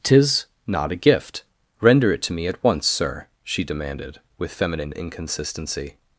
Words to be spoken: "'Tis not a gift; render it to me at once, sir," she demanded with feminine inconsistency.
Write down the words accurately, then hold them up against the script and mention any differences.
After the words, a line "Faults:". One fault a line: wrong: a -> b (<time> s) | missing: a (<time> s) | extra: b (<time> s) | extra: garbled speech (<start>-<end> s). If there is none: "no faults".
"'Tis not a gift; render it to me at once, sir," she demanded with feminine inconsistency.
Faults:
no faults